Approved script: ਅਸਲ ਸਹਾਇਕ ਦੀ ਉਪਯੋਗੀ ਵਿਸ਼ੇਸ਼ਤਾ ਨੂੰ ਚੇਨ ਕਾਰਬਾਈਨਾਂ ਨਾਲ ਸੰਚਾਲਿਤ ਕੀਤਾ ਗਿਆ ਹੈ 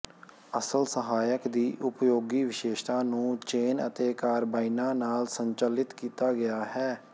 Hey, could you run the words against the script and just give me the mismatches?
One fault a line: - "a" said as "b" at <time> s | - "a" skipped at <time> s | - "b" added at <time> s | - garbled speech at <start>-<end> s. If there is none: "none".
- "ਅਤੇ" added at 3.9 s